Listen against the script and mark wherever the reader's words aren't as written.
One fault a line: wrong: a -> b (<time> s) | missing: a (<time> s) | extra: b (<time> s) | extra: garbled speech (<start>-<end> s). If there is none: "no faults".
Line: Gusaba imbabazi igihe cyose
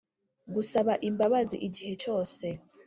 no faults